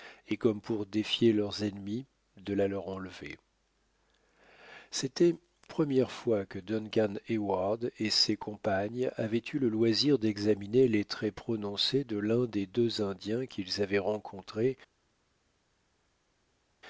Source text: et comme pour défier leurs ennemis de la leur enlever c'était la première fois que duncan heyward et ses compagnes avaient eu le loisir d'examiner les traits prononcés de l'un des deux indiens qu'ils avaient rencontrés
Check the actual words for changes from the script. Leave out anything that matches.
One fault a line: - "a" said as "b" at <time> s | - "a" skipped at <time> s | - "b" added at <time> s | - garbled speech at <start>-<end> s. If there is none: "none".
- "la" skipped at 5.3 s